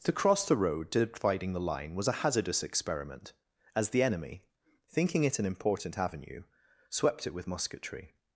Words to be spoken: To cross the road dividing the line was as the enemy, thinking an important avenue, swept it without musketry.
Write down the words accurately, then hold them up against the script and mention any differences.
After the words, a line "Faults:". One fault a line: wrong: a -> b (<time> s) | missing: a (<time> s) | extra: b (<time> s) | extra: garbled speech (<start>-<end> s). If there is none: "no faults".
To cross the road dividing the line was a hazardous experiment, as the enemy, thinking it an important avenue, swept it with musketry.
Faults:
extra: a hazardous experiment (2.1 s)
extra: it (5.2 s)
wrong: without -> with (7.3 s)